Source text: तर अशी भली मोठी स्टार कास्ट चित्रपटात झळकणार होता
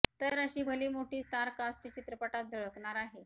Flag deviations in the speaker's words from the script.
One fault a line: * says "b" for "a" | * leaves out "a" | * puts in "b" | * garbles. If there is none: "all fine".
* says "आहे" for "होता"